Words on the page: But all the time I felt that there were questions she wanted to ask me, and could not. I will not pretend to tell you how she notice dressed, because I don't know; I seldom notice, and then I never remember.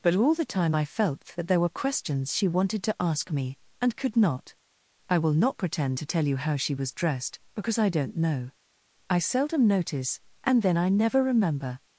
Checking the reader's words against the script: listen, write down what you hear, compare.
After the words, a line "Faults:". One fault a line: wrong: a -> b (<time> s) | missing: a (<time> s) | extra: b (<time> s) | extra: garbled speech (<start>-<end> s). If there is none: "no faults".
But all the time I felt that there were questions she wanted to ask me, and could not. I will not pretend to tell you how she was dressed, because I don't know; I seldom notice, and then I never remember.
Faults:
wrong: notice -> was (6.7 s)